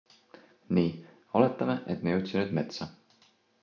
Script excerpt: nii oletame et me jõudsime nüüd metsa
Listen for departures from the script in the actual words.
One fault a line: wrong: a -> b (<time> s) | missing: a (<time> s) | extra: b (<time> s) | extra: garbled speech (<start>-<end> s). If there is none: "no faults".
no faults